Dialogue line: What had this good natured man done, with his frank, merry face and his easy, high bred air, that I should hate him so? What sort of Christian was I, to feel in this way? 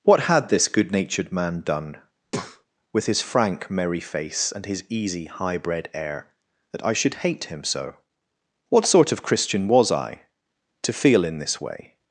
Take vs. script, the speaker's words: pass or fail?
pass